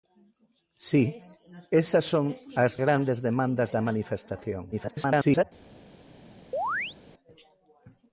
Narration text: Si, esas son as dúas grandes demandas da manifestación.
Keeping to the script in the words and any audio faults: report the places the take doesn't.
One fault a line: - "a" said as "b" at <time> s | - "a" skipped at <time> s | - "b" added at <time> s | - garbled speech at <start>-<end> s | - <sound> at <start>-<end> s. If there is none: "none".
- "dúas" skipped at 2.7 s
- garbled speech at 4.7-5.4 s
- chirp at 6.5-7.0 s